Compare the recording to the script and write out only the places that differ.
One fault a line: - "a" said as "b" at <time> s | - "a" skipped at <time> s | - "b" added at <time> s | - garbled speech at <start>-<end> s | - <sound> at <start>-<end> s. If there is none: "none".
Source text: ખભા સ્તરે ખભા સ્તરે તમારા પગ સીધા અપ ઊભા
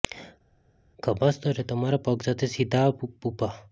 - "ખભા સ્તરે" skipped at 1.6 s
- "સાથે" added at 2.2 s